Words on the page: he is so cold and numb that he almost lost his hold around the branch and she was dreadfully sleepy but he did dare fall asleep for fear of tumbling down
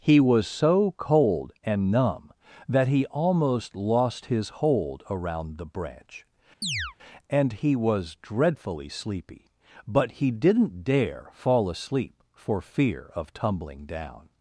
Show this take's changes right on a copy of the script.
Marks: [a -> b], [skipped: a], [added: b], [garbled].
he [is -> was] so cold and numb that he almost lost his hold around the branch and [she -> he] was dreadfully sleepy but he [did -> didn't] dare fall asleep for fear of tumbling down